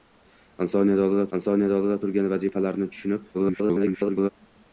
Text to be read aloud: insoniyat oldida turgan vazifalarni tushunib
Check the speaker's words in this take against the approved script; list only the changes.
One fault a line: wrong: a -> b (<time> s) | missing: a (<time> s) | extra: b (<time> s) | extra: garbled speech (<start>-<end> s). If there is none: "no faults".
extra: insoniyat oldida (1.4 s)
extra: garbled speech (3.3-4.3 s)